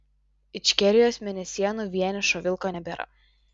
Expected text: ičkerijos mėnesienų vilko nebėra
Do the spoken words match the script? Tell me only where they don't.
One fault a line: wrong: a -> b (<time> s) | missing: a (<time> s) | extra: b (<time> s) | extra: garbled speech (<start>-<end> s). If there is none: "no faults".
extra: vienišo (2.0 s)